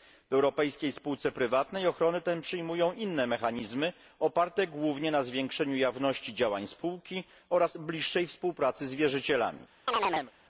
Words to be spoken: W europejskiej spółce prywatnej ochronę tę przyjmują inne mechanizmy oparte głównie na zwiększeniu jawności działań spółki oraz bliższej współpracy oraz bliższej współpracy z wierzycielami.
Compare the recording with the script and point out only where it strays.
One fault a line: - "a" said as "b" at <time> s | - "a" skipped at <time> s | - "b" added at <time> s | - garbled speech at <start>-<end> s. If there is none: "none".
- "oraz bliższej współpracy" skipped at 8.9 s